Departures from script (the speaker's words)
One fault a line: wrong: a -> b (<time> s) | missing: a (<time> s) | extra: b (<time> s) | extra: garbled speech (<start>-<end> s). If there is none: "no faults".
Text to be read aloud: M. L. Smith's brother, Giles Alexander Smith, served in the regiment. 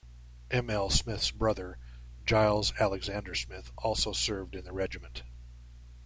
extra: also (3.8 s)